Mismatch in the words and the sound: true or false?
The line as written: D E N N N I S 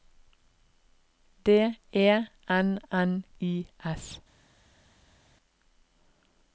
true